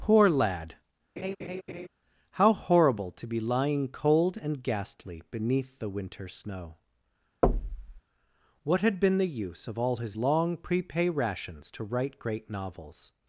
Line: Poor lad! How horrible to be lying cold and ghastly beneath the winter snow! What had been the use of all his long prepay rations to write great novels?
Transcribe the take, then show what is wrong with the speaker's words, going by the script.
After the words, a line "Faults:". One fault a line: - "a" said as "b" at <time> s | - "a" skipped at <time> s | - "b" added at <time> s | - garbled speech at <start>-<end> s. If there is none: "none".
Poor lad! How horrible to be lying cold and ghastly beneath the winter snow! What had been the use of all his long prepay rations to write great novels?
Faults:
none